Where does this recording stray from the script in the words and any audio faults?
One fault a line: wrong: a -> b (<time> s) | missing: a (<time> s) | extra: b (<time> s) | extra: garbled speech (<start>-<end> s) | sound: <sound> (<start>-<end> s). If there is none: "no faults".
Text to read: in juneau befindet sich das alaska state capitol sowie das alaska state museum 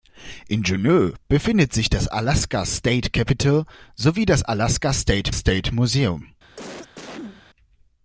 extra: state (5.3 s)
sound: cough (6.6-7.4 s)